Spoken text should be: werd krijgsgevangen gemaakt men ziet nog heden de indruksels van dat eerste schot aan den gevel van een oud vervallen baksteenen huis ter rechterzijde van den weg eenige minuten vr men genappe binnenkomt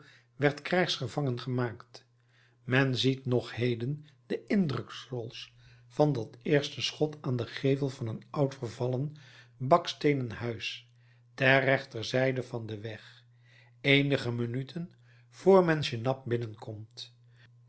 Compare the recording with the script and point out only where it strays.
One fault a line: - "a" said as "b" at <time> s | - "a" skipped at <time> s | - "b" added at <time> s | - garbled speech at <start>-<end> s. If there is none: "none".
none